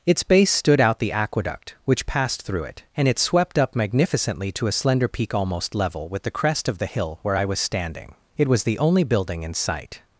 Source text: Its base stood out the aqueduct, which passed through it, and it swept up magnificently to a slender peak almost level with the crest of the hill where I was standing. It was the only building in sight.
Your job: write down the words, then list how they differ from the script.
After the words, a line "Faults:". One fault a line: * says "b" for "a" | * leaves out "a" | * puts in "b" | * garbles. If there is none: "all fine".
Its base stood out the aqueduct, which passed through it, and it swept up magnificently to a slender peak almost level with the crest of the hill where I was standing. It was the only building in sight.
Faults:
all fine